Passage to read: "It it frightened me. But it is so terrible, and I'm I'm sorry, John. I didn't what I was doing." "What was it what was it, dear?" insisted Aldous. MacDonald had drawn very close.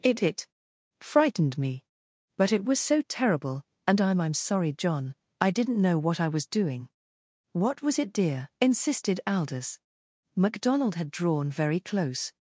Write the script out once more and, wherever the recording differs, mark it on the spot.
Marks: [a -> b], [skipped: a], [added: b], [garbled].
"It it frightened me. But it [is -> was] so terrible, and I'm I'm sorry, John. I didn't [added: know] what I was doing." "What was it [skipped: what was it,] dear?" insisted Aldous. MacDonald had drawn very close.